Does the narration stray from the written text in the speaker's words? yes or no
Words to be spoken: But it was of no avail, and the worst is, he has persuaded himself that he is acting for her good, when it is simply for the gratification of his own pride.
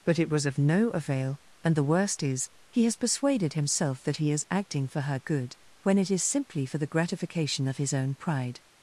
no